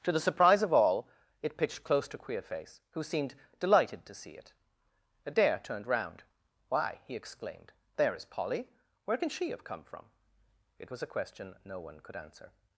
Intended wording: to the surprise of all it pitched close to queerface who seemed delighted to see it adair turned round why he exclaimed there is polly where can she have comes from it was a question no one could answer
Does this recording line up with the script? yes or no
no